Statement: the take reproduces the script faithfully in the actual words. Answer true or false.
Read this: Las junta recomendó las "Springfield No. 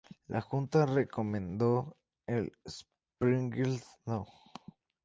false